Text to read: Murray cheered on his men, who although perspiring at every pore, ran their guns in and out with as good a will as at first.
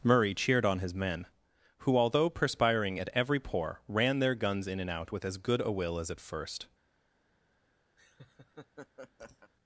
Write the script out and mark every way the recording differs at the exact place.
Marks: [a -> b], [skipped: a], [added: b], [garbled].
Murray cheered on his men, who although perspiring at every pore, ran their guns in and out with as good a will as at first.